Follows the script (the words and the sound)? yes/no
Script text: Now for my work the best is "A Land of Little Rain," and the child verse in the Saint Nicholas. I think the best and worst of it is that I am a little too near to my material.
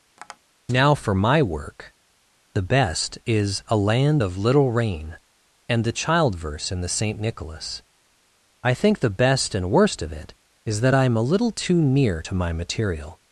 no